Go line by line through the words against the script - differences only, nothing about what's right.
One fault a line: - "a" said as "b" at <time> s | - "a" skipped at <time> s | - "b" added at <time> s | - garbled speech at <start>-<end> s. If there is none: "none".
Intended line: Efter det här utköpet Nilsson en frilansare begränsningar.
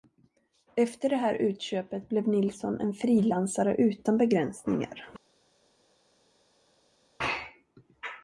- "blev" added at 2.1 s
- "utan" added at 3.7 s